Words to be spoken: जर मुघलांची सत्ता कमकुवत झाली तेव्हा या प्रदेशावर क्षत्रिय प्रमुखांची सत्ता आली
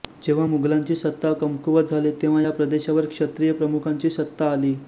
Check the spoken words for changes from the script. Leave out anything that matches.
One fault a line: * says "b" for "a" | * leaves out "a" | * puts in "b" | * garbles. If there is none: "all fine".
* says "जेव्हा" for "जर"